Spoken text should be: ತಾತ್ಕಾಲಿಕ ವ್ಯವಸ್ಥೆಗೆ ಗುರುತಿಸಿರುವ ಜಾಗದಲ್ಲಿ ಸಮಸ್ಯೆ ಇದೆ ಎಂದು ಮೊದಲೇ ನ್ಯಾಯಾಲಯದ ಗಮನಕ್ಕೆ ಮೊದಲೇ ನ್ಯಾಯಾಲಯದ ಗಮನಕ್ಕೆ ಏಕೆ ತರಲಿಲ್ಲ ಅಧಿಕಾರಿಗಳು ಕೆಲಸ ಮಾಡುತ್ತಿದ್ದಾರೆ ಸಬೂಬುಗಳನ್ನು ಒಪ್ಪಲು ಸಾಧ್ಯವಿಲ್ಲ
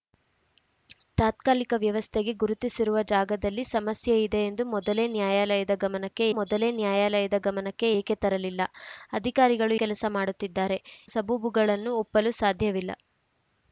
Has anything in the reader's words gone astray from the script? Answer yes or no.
no